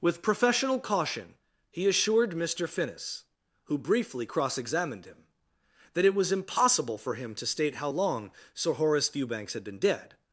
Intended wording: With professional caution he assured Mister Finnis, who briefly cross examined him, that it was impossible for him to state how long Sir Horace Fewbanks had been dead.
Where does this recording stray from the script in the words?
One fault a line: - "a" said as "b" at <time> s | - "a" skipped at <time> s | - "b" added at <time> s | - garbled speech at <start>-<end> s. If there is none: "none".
none